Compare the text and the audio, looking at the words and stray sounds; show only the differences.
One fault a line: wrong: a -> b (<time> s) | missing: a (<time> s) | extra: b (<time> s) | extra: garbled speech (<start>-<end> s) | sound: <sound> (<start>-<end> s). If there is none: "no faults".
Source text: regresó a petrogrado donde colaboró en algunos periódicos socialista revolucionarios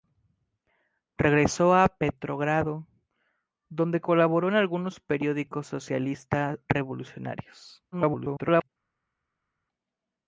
extra: garbled speech (7.9-8.7 s)